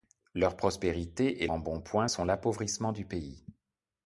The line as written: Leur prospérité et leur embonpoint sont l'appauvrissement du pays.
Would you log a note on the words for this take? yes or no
yes